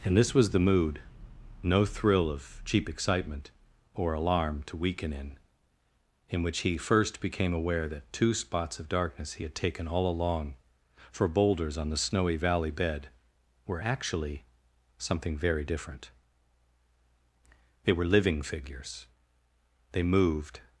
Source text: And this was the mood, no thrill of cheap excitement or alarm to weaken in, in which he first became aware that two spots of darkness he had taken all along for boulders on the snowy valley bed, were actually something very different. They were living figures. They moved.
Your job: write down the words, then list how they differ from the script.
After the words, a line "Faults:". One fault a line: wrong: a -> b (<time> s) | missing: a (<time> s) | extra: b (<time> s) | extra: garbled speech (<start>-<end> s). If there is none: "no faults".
And this was the mood, no thrill of cheap excitement or alarm to weaken in, in which he first became aware that two spots of darkness he had taken all along for boulders on the snowy valley bed, were actually something very different. They were living figures. They moved.
Faults:
no faults